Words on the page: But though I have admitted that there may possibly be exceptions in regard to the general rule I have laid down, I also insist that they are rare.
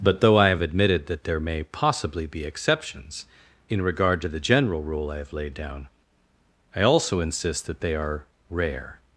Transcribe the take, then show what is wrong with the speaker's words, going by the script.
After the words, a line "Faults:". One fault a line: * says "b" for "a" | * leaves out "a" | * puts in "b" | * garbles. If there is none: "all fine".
But though I have admitted that there may possibly be exceptions in regard to the general rule I have laid down, I also insist that they are rare.
Faults:
all fine